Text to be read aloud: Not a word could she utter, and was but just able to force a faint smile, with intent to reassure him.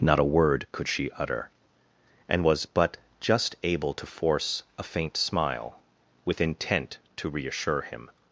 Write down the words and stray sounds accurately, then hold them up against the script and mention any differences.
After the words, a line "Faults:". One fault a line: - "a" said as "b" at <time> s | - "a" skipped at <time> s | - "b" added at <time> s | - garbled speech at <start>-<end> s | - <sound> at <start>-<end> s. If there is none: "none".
Not a word could she utter, and was but just able to force a faint smile, with intent to reassure him.
Faults:
none